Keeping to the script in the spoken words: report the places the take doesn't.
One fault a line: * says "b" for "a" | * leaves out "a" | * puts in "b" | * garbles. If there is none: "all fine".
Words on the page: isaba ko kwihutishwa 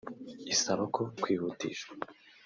all fine